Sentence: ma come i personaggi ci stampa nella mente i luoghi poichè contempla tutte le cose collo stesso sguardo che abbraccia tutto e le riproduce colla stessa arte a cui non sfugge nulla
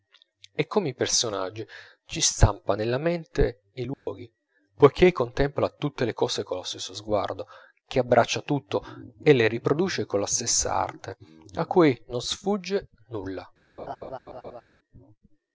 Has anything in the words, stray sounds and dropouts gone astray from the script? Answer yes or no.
yes